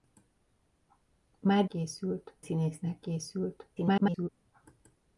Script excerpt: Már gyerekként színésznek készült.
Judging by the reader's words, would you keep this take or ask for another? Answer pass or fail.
fail